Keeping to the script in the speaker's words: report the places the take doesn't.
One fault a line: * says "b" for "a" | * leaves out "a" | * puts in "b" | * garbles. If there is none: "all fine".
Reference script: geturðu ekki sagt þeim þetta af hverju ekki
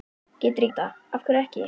* leaves out "ekki sagt þeim"